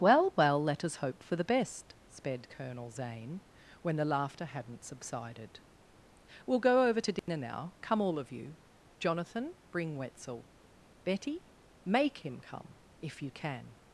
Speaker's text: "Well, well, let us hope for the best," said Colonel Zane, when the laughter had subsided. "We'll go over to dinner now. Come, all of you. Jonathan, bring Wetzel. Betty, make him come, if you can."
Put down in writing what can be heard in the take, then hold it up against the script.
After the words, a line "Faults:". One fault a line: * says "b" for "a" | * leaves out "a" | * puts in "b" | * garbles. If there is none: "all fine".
"Well, well, let us hope for the best," sped Colonel Zane, when the laughter hadn't subsided. "We'll go over to dinner now. Come, all of you. Jonathan, bring Wetzel. Betty, make him come, if you can."
Faults:
* says "sped" for "said"
* says "hadn't" for "had"